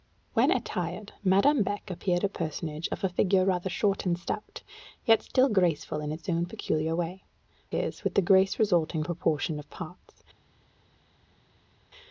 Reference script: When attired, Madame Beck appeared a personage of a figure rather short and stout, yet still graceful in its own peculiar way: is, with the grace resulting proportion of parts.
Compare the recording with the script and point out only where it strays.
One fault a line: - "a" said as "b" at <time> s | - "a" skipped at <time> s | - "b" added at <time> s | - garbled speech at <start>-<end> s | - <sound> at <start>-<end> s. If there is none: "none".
none